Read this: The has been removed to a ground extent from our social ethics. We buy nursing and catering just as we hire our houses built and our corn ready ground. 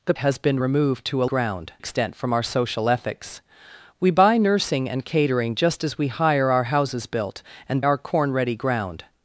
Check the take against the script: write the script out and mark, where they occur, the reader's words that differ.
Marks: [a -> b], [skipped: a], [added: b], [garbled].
The has been removed to a ground extent from our social ethics. We buy nursing and catering just as we hire our houses built and our corn ready ground.